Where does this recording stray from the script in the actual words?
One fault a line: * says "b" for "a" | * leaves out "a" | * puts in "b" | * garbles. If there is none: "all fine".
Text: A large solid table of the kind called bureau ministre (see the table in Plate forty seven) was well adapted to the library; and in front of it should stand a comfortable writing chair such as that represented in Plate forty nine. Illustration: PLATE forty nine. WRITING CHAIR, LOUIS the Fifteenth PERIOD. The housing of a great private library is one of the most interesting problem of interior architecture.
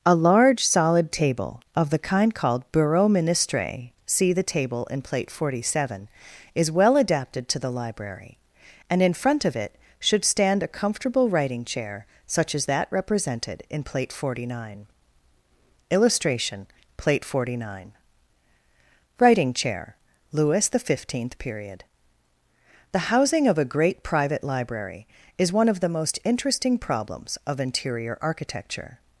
* says "is" for "was"
* says "problems" for "problem"